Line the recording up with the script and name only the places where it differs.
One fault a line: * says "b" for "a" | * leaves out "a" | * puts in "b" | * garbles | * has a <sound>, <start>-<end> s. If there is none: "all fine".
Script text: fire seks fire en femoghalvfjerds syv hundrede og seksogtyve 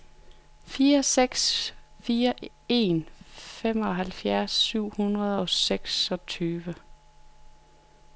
all fine